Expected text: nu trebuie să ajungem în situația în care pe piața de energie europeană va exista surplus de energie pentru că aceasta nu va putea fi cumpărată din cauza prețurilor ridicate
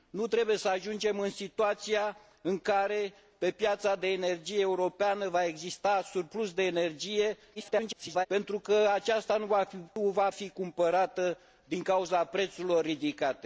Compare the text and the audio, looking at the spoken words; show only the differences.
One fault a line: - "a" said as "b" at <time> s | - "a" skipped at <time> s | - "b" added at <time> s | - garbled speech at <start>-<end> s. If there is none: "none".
- garbled speech at 7.5-8.3 s
- "putea" skipped at 10.3 s